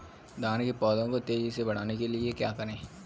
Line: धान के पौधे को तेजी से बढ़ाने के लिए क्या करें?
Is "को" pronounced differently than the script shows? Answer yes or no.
no